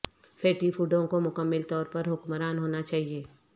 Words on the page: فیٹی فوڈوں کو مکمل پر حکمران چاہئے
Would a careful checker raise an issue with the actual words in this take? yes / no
yes